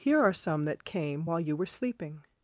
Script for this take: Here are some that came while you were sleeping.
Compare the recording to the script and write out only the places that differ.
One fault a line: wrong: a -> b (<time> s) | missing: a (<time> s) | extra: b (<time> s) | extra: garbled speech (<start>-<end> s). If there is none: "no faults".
no faults